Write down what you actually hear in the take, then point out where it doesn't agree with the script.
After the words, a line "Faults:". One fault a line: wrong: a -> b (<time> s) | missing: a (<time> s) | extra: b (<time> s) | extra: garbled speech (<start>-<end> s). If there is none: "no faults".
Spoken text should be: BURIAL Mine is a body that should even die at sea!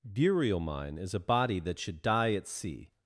BURIAL Mine is a body that should die at sea!
Faults:
missing: even (2.0 s)